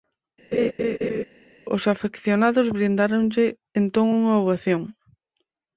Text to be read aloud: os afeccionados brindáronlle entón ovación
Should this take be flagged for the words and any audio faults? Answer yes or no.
yes